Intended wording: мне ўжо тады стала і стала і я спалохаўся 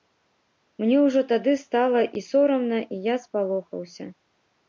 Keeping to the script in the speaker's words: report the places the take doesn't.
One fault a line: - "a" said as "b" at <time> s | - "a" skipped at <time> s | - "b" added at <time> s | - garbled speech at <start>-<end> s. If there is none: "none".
- "стала" said as "сорамна" at 2.3 s